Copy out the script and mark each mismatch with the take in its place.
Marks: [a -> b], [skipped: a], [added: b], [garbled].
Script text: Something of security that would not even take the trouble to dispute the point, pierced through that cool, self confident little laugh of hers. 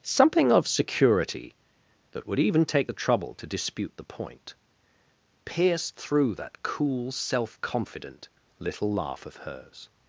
Something of security that would [skipped: not] even take the trouble to dispute the point, pierced through that cool, self confident little laugh of hers.